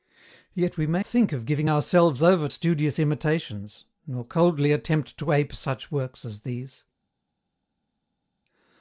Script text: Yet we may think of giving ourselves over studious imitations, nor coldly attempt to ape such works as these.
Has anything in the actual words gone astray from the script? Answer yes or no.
no